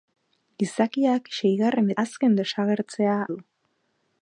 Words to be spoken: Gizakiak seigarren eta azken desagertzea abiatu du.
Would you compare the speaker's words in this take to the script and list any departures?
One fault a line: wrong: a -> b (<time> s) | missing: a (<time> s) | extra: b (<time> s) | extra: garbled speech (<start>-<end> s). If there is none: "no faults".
missing: eta (1.9 s)
missing: abiatu (3.2 s)